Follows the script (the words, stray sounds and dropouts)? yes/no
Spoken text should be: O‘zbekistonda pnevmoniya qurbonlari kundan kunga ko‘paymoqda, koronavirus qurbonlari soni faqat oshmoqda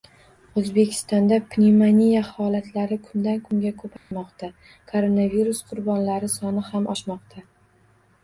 no